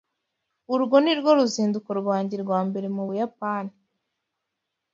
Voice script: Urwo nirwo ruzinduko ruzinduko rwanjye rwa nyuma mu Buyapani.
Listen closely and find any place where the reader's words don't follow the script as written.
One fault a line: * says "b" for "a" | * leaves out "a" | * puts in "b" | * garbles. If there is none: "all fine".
* leaves out "ruzinduko"
* says "mbere" for "nyuma"